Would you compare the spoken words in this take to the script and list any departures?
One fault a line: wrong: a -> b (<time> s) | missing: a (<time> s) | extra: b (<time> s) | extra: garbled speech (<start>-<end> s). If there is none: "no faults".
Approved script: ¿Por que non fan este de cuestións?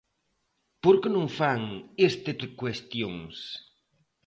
no faults